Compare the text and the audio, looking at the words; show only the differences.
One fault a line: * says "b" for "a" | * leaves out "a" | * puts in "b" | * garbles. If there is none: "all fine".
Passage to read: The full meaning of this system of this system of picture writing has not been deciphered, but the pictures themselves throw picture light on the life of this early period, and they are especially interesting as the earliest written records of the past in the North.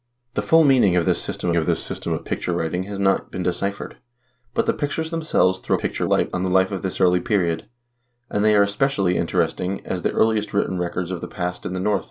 all fine